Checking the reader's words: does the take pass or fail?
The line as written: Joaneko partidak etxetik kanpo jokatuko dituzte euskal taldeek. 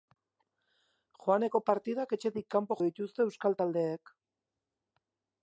fail